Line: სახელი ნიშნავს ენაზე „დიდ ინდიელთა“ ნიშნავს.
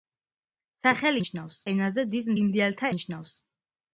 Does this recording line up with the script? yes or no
yes